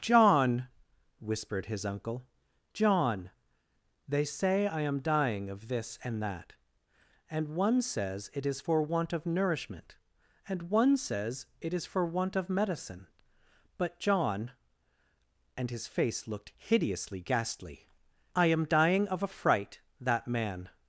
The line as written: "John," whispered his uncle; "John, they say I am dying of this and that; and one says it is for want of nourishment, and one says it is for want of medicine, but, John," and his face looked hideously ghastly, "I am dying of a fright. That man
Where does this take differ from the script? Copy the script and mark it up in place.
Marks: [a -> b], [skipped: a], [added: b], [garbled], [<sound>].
"John," whispered his uncle; "John, they say I am dying of this and that; and one says it is for want of nourishment, and one says it is for want of medicine, but, John," and his face looked hideously ghastly, "I am dying of a fright. That man